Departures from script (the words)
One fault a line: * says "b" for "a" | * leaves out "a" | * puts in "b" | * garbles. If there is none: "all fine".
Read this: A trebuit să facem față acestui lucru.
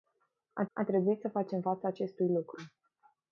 * puts in "a"